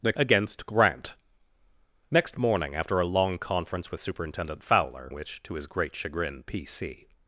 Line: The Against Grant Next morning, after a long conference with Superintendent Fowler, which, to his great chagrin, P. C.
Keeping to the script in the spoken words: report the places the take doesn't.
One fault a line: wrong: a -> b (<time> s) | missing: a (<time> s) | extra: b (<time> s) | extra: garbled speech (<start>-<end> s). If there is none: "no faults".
no faults